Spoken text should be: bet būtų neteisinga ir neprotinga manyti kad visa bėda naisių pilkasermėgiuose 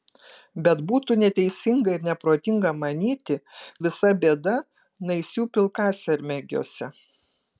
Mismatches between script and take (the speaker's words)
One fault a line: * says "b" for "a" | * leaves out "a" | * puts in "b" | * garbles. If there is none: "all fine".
* leaves out "kad"